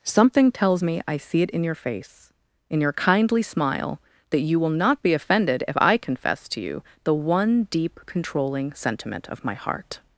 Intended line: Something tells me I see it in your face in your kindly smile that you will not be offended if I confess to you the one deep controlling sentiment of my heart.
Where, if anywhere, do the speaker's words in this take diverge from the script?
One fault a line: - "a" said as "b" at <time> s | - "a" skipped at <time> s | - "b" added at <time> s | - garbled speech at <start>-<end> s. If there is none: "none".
none